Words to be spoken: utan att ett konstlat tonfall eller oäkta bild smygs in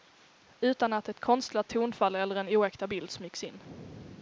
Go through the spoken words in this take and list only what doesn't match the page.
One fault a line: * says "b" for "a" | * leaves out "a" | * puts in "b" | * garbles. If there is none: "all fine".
* puts in "en"